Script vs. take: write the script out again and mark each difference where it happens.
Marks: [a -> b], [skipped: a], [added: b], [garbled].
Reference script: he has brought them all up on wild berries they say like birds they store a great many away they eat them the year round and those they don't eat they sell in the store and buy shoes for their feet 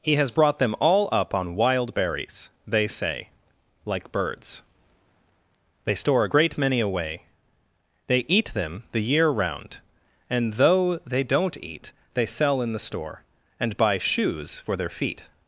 he has brought them all up on wild berries they say like birds they store a great many away they eat them the year round and [those -> though] they don't eat they sell in the store and buy shoes for their feet